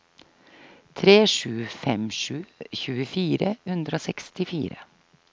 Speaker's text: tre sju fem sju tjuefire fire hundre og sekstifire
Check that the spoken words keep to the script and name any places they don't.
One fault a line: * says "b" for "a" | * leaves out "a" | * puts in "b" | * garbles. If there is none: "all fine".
* leaves out "fire"